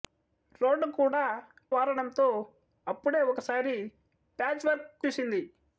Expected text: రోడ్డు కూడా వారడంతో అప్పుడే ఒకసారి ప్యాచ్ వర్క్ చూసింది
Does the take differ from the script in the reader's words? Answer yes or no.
no